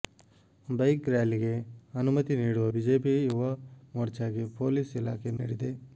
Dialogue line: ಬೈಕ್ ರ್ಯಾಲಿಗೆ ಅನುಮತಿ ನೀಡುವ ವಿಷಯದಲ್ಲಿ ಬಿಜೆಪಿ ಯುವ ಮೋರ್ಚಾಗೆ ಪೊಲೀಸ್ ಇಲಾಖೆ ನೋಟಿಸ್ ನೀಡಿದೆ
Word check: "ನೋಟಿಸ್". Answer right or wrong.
wrong